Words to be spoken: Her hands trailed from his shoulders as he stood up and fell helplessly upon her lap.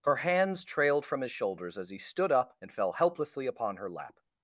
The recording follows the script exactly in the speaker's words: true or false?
true